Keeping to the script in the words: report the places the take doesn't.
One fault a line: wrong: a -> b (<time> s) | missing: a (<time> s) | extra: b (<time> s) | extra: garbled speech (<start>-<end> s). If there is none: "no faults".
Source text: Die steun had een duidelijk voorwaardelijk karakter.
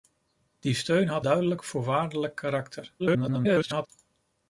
missing: een (1.2 s)
extra: garbled speech (3.0-3.9 s)